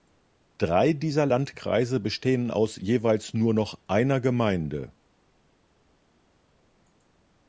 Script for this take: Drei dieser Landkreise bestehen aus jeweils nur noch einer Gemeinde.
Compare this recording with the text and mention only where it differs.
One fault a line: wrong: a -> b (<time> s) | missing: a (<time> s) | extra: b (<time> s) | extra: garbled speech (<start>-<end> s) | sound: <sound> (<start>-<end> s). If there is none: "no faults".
no faults